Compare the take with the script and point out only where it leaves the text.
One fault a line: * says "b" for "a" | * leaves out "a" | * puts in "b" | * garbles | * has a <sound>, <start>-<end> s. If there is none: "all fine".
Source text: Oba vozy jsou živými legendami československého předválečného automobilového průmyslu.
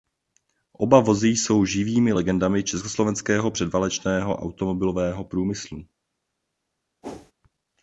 * has a whoosh, 7.0-7.3 s